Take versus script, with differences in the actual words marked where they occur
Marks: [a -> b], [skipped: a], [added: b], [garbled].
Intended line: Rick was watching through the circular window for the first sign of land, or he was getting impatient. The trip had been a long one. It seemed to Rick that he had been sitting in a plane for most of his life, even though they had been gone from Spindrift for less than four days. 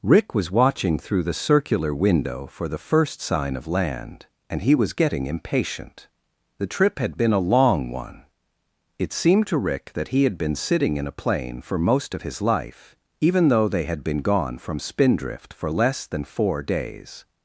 Rick was watching through the circular window for the first sign of land, [or -> and] he was getting impatient. The trip had been a long one. It seemed to Rick that he had been sitting in a plane for most of his life, even though they had been gone from Spindrift for less than four days.